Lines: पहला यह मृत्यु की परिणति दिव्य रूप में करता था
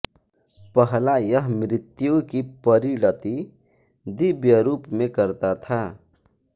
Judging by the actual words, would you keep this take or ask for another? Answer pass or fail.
pass